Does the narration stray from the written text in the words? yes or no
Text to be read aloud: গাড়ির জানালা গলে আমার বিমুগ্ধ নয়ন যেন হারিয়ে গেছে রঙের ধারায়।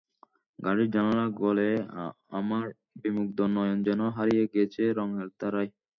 no